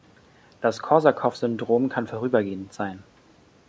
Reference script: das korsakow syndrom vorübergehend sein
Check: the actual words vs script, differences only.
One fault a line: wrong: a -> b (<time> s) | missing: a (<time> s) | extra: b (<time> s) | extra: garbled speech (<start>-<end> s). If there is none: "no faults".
extra: kann (1.9 s)